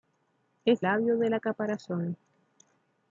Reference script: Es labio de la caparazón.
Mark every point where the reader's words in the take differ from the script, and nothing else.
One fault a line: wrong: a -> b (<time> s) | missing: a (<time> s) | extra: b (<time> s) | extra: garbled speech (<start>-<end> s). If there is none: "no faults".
no faults